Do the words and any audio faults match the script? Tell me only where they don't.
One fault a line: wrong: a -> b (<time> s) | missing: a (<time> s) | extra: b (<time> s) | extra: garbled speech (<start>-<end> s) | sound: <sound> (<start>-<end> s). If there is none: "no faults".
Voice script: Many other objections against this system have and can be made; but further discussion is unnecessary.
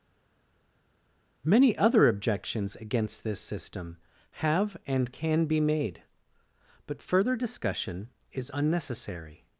no faults